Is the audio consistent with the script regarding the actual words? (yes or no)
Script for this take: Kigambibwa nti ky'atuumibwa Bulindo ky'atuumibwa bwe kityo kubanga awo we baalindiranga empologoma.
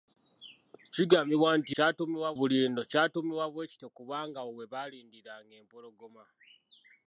yes